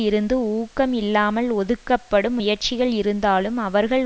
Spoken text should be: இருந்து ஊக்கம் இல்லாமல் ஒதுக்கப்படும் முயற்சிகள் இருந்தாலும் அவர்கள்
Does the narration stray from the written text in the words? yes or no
no